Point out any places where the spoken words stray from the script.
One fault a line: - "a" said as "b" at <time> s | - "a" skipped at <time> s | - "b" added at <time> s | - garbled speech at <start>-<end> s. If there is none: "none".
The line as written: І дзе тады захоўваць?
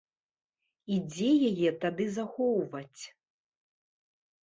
- "яе" added at 1.5 s